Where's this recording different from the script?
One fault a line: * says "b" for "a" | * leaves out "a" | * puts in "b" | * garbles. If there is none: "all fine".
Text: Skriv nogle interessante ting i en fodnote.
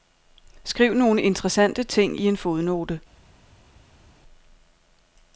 all fine